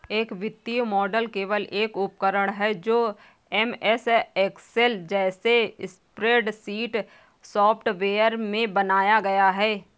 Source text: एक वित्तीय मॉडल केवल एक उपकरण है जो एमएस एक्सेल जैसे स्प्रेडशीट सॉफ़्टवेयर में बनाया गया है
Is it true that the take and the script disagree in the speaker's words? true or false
false